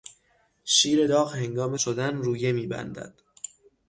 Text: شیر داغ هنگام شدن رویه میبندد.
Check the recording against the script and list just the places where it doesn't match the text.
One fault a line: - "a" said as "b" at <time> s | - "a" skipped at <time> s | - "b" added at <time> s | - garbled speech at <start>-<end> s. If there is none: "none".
none